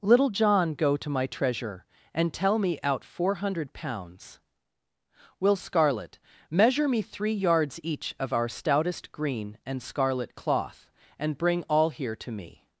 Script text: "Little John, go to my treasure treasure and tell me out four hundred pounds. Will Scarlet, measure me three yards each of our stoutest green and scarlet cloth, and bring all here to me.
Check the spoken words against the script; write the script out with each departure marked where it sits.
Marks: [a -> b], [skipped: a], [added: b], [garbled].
"Little John, go to my treasure [skipped: treasure] and tell me out four hundred pounds. Will Scarlet, measure me three yards each of our stoutest green and scarlet cloth, and bring all here to me.